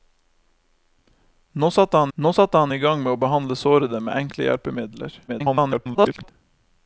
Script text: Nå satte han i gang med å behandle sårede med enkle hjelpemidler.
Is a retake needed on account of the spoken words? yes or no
yes